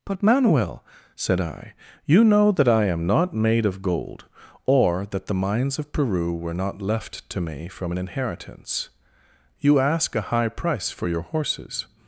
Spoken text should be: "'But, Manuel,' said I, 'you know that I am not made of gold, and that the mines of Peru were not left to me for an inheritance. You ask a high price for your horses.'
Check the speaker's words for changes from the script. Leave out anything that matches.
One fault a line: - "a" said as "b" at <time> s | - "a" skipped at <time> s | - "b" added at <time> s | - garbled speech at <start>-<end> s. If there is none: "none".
- "and" said as "or" at 4.6 s
- "for" said as "from" at 7.7 s